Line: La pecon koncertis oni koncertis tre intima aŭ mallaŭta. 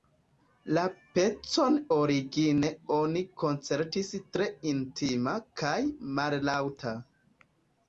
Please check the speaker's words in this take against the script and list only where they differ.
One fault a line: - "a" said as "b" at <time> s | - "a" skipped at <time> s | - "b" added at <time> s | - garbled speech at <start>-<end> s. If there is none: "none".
- "koncertis" said as "origine" at 1.9 s
- "aŭ" said as "kaj" at 5.6 s